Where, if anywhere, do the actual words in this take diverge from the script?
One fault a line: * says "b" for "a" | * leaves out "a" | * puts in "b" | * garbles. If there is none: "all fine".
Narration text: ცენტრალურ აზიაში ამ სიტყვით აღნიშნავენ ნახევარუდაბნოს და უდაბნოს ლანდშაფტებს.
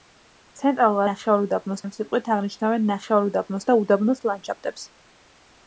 * says "ნახევარუდაბნოს" for "აზიაში"